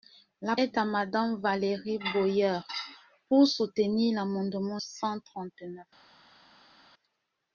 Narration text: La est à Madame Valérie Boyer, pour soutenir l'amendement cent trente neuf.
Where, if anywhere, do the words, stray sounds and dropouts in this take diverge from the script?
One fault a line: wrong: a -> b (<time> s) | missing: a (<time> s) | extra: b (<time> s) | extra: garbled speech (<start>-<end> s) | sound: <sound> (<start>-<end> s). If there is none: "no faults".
no faults